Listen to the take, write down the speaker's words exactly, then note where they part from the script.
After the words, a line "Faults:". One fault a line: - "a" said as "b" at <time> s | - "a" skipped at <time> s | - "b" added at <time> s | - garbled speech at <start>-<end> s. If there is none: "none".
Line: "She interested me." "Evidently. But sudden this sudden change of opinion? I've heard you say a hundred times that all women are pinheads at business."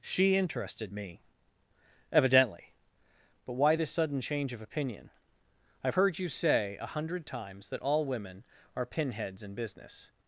"She interested me." "Evidently. But why this sudden change of opinion? I've heard you say a hundred times that all women are pinheads in business."
Faults:
- "sudden" said as "why" at 3.5 s
- "at" said as "in" at 9.4 s